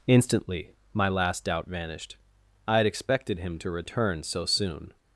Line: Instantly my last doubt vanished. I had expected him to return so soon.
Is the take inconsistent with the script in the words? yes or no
no